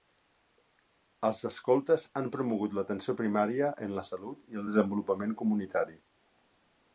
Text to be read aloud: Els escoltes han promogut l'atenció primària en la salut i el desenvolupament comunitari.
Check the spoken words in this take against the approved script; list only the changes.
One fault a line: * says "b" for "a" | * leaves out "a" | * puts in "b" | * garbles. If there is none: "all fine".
all fine